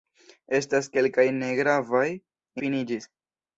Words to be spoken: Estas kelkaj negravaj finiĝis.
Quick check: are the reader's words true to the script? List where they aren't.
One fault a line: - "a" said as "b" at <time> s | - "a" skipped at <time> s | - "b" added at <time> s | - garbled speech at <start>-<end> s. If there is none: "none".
none